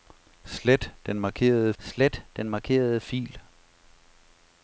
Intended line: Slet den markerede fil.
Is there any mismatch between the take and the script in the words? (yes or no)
yes